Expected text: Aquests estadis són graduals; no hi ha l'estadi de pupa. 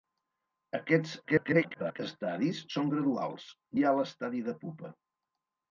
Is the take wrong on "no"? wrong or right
wrong